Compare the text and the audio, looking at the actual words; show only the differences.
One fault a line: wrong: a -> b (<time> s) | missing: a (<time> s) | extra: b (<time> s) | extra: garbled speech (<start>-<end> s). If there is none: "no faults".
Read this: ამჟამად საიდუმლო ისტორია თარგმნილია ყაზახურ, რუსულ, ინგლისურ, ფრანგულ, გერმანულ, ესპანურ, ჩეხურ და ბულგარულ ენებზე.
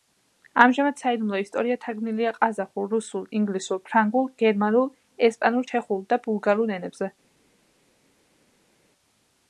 no faults